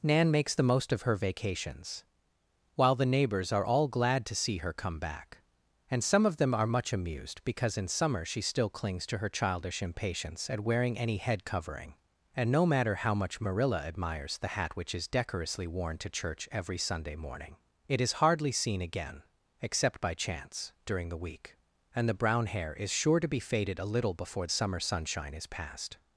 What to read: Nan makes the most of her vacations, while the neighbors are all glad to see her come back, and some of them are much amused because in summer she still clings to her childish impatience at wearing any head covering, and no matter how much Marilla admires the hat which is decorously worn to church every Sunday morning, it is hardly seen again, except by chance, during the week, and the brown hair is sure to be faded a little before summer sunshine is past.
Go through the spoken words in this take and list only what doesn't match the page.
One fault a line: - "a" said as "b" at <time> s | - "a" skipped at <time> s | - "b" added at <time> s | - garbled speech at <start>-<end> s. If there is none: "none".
none